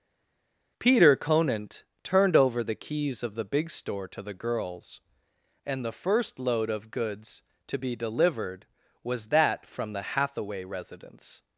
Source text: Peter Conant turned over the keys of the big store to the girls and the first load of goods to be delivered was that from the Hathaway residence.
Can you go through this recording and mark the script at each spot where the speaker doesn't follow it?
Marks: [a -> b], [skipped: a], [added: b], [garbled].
Peter Conant turned over the keys of the big store to the girls and the first load of goods to be delivered was that from the Hathaway residence.